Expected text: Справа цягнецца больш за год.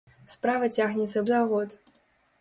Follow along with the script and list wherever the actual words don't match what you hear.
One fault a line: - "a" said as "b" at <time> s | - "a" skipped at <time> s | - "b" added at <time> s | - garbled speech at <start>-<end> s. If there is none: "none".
- "больш" skipped at 1.2 s